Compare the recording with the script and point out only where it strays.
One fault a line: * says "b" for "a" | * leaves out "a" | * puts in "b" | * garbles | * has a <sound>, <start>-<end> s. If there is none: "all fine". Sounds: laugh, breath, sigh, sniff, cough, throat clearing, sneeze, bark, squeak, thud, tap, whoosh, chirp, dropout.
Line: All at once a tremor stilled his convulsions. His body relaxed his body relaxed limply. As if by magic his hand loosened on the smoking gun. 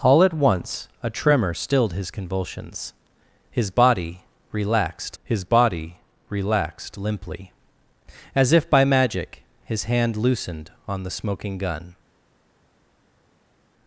all fine